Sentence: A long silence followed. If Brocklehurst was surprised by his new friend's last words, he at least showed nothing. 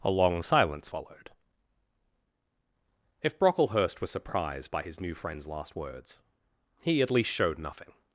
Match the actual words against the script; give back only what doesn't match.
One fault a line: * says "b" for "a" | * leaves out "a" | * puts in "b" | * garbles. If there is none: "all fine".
all fine